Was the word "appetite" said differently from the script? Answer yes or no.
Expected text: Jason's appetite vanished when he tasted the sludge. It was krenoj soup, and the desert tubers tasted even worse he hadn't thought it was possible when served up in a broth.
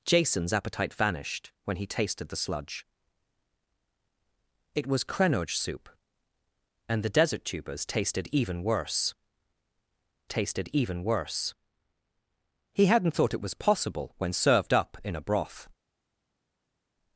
no